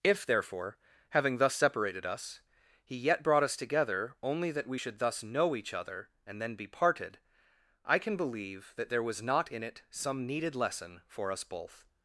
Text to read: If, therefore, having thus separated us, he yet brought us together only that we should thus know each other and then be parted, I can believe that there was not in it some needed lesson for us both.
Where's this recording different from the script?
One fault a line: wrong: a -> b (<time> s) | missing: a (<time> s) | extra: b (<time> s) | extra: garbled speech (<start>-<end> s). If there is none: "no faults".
no faults